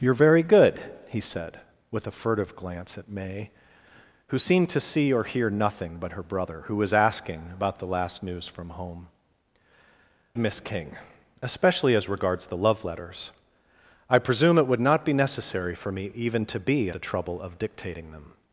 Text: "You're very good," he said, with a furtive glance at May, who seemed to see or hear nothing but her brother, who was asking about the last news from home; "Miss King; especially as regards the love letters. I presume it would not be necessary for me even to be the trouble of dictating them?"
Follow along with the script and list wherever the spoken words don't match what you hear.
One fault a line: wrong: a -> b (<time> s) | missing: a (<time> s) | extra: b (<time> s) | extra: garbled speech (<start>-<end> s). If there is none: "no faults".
no faults